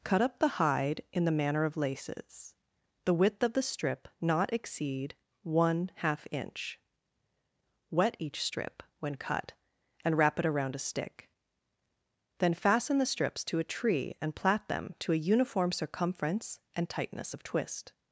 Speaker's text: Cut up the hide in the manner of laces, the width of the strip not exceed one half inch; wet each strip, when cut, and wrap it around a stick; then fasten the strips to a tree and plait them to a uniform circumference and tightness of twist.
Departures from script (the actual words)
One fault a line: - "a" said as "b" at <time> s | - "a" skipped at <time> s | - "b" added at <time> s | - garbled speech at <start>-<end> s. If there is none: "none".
none